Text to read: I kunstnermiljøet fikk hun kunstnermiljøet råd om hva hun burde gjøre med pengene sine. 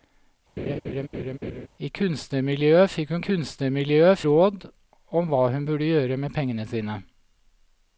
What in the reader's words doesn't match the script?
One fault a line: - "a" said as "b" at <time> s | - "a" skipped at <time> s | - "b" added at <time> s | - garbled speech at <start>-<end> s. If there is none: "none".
none